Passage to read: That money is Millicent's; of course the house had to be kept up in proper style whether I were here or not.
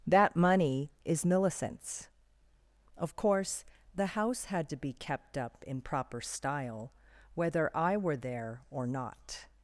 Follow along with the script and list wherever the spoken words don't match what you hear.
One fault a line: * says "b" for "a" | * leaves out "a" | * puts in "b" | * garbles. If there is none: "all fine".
* says "there" for "here"